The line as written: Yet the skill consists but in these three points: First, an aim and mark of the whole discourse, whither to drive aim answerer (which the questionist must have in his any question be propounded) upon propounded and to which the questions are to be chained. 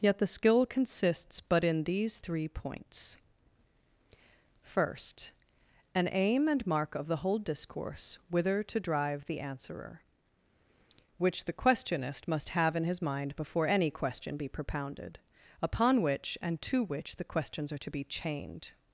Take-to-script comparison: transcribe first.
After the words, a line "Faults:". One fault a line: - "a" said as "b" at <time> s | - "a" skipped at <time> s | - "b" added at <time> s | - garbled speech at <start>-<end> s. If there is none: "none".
Yet the skill consists but in these three points: First, an aim and mark of the whole discourse, whither to drive the answerer (which the questionist must have in his mind before any question be propounded) upon which and to which the questions are to be chained.
Faults:
- "aim" said as "the" at 9.3 s
- "mind before" added at 13.0 s
- "propounded" said as "which" at 16.0 s